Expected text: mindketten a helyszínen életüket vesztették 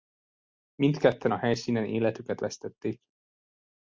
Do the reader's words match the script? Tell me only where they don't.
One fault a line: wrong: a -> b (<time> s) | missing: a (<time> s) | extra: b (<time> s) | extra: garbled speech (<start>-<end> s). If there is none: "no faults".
no faults